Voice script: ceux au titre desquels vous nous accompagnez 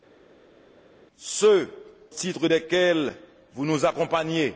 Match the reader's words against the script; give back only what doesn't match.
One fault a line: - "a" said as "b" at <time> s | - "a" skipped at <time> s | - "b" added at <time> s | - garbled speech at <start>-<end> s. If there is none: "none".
- "au" skipped at 1.7 s